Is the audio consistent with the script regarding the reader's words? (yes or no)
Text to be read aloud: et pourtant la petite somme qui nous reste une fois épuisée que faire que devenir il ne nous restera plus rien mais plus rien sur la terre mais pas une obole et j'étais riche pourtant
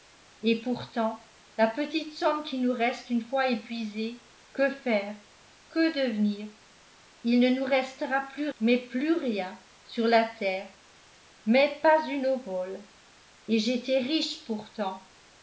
no